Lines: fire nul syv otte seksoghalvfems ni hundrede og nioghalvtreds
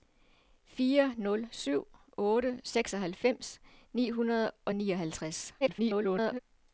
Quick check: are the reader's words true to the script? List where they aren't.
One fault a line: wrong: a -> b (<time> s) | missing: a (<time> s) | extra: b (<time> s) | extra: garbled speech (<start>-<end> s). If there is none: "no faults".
extra: garbled speech (5.6-6.4 s)